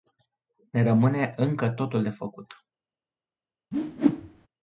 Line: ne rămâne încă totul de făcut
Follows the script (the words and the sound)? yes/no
no